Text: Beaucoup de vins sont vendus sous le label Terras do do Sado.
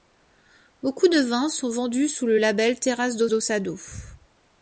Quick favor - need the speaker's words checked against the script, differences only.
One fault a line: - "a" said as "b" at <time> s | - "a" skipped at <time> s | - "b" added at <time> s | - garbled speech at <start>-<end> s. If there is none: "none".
none